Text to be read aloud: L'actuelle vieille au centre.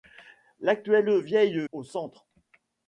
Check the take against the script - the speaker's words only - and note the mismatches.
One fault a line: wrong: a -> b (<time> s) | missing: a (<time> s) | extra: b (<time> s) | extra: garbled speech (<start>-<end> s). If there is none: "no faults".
no faults